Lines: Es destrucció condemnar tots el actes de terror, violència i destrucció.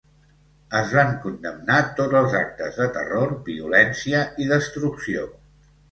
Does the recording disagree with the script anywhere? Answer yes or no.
yes